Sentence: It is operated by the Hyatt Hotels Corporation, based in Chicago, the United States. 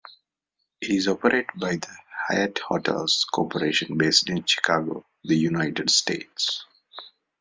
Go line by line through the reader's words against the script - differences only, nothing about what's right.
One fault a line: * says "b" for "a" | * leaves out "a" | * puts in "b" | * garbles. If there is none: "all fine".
all fine